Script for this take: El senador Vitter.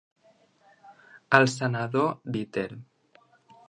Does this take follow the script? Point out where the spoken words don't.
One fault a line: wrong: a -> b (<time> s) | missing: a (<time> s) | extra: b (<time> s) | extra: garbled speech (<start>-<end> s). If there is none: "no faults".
no faults